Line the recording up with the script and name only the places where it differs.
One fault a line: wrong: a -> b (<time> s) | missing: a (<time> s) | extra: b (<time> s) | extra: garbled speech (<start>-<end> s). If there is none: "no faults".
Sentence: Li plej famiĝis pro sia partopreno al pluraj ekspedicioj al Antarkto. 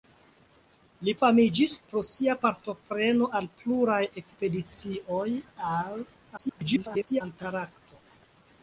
missing: plej (1.1 s)
extra: garbled speech (6.4-7.2 s)